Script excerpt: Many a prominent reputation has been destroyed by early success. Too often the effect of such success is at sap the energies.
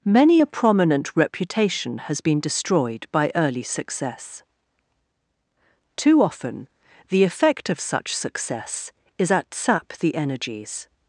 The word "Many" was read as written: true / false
true